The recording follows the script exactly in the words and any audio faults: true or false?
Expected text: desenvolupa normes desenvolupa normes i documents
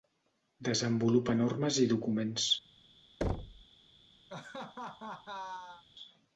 false